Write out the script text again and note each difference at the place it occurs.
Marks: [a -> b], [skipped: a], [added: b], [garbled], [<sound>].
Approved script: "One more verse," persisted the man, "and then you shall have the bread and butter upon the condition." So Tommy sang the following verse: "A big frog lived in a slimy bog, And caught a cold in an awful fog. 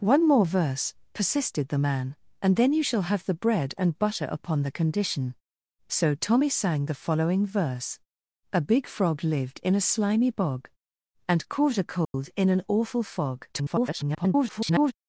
"One more verse," persisted the man, "and then you shall have the bread and butter upon the condition." So Tommy sang the following verse: "A big frog lived in a slimy bog, And caught a cold [dropout] in an awful fog. [garbled]